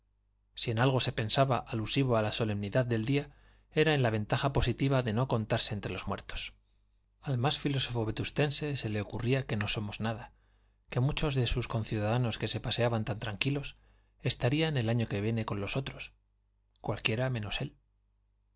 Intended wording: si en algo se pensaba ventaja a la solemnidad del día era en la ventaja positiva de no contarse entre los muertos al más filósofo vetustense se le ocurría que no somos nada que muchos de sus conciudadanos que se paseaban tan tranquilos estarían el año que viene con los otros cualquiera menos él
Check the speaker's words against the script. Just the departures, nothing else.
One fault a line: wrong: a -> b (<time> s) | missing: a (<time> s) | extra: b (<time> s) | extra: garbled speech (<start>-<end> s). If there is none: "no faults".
wrong: ventaja -> alusivo (1.6 s)